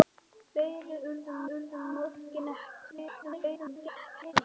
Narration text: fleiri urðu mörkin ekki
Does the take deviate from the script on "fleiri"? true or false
false